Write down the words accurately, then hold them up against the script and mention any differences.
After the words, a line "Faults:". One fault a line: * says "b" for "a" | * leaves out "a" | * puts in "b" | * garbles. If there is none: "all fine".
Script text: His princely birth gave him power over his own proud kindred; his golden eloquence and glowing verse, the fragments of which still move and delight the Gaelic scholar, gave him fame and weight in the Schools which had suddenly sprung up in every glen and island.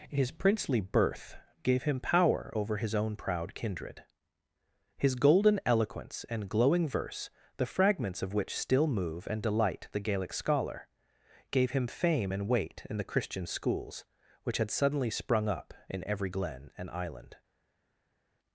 His princely birth gave him power over his own proud kindred; his golden eloquence and glowing verse, the fragments of which still move and delight the Gaelic scholar, gave him fame and weight in the Christian schools which had suddenly sprung up in every glen and island.
Faults:
* puts in "Christian"